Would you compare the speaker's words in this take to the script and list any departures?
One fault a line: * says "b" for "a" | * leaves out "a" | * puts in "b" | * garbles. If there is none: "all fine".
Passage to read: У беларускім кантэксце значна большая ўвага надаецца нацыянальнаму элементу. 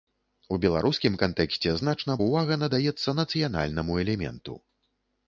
* leaves out "большая"